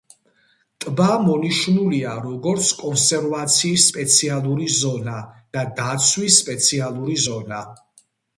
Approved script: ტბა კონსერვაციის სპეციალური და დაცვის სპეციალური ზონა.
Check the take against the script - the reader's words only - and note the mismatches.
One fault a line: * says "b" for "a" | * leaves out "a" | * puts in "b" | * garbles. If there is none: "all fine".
* puts in "მონიშნულია როგორც"
* puts in "ზონა"